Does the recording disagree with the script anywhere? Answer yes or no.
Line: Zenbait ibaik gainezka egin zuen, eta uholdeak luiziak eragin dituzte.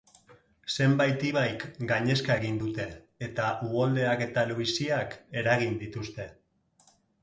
yes